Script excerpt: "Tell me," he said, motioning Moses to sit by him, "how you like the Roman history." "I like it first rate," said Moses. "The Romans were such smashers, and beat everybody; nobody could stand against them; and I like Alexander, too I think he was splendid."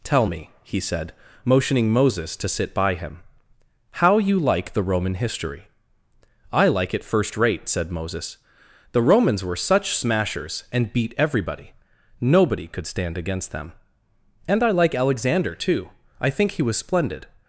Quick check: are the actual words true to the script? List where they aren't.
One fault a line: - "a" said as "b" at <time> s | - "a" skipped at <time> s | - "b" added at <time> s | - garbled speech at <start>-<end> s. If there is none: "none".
none